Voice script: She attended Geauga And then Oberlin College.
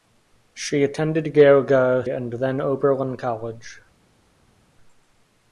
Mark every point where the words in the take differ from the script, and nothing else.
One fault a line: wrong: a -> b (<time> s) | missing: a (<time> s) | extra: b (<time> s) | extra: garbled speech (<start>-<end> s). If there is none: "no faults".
no faults